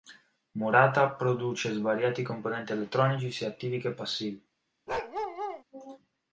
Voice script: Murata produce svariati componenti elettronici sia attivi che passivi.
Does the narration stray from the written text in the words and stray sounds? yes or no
yes